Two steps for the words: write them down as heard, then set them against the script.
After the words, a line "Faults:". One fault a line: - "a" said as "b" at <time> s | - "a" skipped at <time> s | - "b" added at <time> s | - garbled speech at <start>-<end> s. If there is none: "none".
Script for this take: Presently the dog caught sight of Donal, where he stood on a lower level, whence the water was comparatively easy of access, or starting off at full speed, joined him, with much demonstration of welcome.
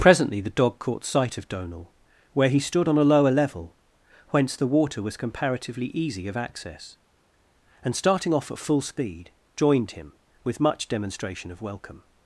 Presently the dog caught sight of Donal, where he stood on a lower level, whence the water was comparatively easy of access, and starting off at full speed, joined him, with much demonstration of welcome.
Faults:
- "or" said as "and" at 7.8 s